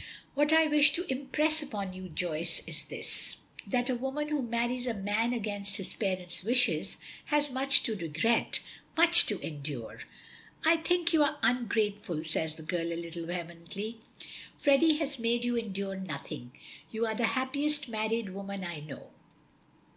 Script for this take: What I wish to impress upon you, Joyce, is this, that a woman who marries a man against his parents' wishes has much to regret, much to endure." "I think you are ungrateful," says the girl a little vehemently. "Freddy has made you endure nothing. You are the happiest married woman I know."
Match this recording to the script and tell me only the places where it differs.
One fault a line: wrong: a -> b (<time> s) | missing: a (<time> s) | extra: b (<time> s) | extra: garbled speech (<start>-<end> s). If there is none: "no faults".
no faults